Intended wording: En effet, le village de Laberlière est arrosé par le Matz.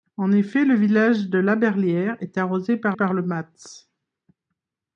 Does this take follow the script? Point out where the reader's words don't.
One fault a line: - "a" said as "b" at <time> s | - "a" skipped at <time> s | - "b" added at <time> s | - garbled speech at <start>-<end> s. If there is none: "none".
- "par" added at 2.9 s